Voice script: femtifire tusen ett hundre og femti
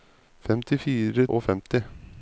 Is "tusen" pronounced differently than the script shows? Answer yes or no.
yes